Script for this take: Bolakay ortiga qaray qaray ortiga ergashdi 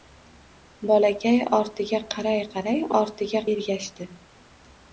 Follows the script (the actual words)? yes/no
yes